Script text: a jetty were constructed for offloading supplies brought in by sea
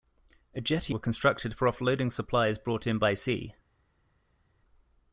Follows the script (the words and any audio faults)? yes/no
yes